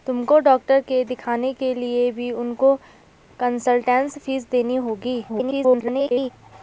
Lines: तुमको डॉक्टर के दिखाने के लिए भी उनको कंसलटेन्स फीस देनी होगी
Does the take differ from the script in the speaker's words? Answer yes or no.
yes